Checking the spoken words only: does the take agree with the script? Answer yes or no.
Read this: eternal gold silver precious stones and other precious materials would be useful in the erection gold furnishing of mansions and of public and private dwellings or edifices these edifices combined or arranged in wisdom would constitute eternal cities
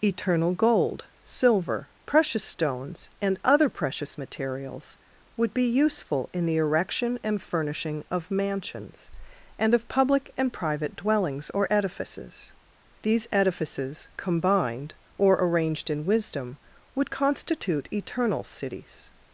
no